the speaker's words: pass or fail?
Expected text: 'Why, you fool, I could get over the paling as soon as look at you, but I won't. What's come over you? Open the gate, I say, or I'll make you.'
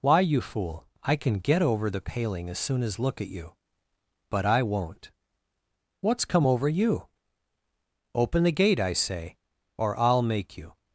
fail